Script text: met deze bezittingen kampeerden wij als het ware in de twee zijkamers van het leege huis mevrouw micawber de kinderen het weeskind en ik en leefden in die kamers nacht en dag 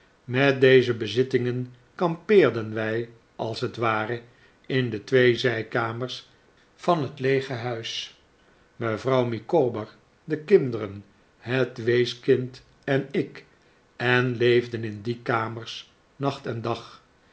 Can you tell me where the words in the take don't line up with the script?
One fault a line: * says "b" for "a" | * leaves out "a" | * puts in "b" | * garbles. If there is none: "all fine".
all fine